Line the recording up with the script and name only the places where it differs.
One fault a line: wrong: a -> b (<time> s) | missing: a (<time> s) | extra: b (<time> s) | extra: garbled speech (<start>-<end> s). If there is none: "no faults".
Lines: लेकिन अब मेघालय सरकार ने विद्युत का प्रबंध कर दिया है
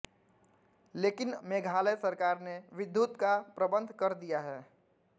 missing: अब (1.3 s)